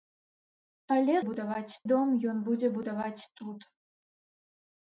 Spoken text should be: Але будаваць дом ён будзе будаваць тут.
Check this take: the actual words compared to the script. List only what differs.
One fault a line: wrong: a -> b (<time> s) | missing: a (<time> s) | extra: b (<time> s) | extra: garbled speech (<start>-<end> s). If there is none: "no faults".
no faults